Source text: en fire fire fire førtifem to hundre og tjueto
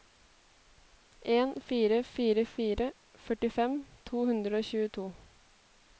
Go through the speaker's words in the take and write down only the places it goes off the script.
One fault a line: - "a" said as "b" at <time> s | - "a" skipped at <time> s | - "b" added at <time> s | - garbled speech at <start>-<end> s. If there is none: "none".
none